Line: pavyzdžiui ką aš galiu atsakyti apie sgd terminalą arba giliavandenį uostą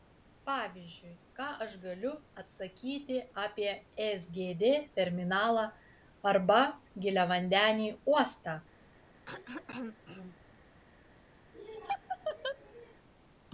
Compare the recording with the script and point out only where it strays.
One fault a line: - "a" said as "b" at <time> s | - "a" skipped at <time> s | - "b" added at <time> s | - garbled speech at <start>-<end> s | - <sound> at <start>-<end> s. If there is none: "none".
- throat clearing at 9.3-10.4 s
- laugh at 11.5-12.9 s